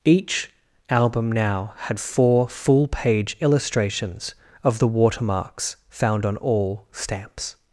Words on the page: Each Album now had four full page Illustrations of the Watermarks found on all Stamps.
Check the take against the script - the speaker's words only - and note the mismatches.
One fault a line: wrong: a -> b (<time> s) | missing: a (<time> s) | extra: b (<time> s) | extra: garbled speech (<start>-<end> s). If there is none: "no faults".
no faults